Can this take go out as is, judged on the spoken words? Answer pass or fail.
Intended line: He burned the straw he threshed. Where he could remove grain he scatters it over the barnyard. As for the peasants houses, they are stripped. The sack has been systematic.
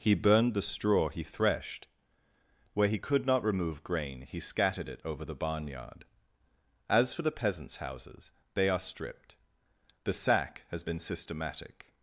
fail